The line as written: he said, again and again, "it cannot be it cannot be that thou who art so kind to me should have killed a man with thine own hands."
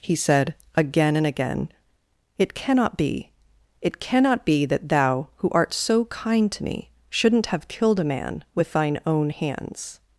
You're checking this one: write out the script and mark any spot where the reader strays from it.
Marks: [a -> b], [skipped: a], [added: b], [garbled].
he said, again and again, "it cannot be it cannot be that thou who art so kind to me [should -> shouldn't] have killed a man with thine own hands."